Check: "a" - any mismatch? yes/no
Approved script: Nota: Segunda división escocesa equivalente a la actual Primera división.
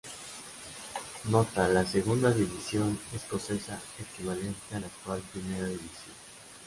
no